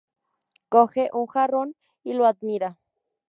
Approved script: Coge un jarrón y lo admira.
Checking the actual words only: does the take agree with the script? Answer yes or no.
yes